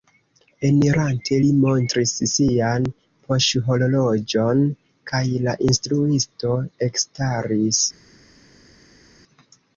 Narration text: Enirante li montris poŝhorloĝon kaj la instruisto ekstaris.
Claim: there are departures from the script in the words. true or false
true